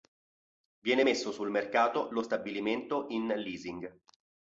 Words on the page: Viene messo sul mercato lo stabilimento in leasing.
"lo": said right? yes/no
yes